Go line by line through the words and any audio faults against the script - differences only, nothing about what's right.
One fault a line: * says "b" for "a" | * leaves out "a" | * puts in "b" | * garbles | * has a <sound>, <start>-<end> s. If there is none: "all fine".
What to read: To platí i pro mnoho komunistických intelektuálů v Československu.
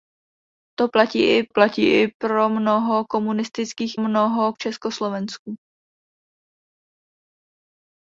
* puts in "platí i"
* says "mnoho" for "intelektuálů"